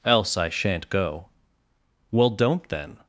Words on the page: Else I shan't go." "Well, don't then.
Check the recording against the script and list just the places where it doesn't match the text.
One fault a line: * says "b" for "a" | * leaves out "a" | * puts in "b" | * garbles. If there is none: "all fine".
all fine